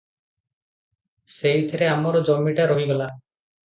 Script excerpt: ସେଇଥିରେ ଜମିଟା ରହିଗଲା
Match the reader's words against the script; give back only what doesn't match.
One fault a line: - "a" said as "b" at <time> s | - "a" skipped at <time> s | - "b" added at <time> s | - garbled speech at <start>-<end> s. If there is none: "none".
- "ଆମର" added at 1.9 s